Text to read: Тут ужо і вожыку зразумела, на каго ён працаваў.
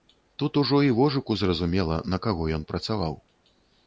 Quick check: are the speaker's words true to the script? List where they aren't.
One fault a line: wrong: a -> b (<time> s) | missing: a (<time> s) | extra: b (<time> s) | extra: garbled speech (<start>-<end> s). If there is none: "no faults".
no faults